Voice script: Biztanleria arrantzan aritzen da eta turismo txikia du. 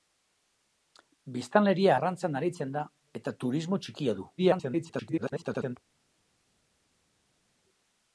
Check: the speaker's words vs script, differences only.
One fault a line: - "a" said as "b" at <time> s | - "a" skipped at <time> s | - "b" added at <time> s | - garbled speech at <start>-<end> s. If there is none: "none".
- garbled speech at 4.4-5.8 s